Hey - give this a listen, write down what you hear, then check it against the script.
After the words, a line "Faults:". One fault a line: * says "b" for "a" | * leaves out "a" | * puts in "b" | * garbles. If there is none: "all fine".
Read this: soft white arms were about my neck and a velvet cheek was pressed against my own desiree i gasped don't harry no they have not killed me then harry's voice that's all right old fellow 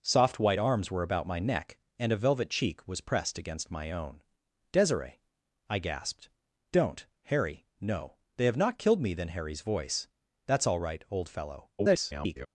soft white arms were about my neck and a velvet cheek was pressed against my own desiree i gasped don't harry no they have not killed me then harry's voice that's all right old fellow [garbled]
Faults:
* garbles